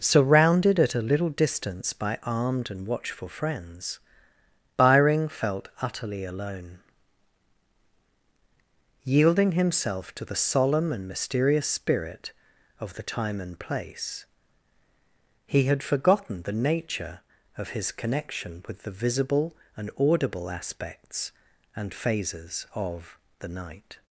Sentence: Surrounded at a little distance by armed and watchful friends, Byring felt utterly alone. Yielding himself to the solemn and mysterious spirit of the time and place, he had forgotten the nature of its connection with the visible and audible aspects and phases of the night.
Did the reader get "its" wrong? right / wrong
wrong